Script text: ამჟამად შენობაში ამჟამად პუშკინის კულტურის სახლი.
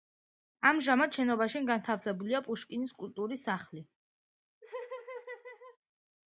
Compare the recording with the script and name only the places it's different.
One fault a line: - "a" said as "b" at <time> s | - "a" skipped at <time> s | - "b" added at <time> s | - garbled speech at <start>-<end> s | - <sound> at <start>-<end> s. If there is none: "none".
- "ამჟამად" said as "განთავსებულია" at 1.7 s
- laugh at 4.6-5.8 s